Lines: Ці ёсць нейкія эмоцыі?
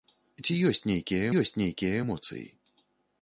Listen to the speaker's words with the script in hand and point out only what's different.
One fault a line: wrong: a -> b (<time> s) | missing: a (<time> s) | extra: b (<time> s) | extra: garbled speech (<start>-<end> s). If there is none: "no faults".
extra: ёсць нейкія (1.4 s)